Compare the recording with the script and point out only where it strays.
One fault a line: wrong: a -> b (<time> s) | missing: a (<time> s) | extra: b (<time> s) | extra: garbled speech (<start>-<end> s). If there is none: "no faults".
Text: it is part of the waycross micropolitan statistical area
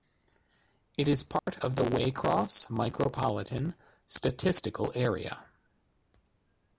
no faults